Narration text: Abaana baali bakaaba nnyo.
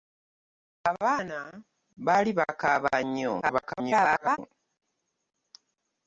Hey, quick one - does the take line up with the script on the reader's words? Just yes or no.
no